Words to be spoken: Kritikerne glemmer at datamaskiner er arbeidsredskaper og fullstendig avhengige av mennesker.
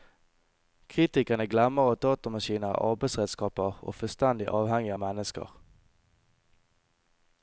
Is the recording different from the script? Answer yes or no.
no